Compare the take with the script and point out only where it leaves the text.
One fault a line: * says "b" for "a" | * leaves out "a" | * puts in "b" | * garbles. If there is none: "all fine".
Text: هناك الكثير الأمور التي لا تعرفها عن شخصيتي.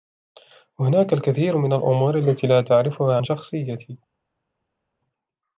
* puts in "من"